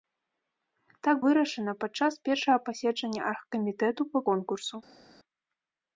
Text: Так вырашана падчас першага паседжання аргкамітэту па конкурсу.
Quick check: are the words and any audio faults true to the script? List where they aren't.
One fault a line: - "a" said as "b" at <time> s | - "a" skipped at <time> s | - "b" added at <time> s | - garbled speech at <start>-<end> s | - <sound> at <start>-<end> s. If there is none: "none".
none